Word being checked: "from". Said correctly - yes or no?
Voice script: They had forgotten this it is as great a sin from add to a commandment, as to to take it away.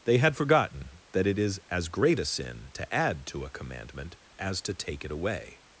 no